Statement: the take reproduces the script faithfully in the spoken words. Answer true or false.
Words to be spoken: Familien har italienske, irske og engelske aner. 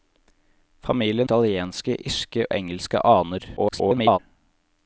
false